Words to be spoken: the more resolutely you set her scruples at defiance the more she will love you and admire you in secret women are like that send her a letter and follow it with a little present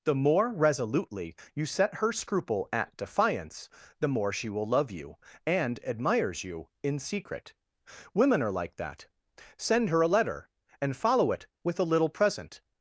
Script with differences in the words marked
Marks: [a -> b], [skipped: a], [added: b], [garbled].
the more resolutely you set her [scruples -> scruple] at defiance the more she will love you and [admire -> admires] you in secret women are like that send her a letter and follow it with a little present